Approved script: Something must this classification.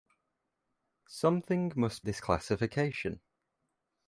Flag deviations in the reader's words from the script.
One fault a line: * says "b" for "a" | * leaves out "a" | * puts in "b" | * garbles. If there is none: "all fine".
all fine